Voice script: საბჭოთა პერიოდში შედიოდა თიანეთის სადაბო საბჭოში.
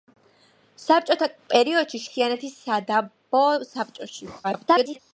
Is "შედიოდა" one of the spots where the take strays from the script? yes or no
yes